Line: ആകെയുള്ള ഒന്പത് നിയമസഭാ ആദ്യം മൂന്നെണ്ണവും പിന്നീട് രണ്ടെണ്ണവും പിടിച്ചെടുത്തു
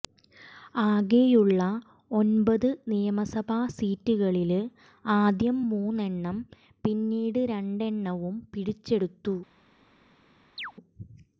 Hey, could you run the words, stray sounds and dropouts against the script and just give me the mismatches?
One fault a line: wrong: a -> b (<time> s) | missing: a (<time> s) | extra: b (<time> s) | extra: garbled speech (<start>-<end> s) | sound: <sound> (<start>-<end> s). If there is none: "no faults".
extra: സീറ്റുകളില് (3.7 s)
sound: chirp (10.6-10.7 s)